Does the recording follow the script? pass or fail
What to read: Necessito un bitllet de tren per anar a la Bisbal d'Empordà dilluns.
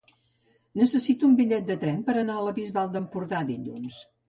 pass